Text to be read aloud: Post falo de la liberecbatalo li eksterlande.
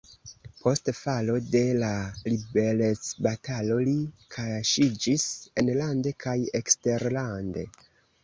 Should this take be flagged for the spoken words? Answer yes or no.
yes